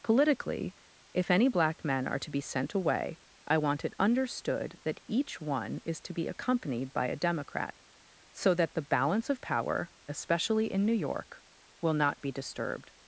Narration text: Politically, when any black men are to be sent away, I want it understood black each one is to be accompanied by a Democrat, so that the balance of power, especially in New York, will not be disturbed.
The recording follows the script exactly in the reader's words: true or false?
false